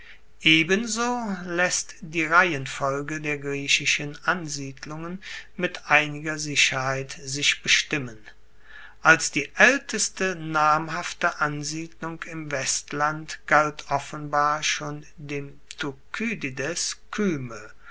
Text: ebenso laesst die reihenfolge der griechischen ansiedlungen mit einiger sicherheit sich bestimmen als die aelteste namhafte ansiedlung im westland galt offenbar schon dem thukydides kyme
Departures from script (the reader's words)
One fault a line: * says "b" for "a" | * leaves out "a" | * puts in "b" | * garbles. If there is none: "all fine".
all fine